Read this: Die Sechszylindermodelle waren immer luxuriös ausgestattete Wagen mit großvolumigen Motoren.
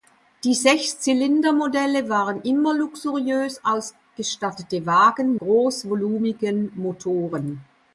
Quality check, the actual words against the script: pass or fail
fail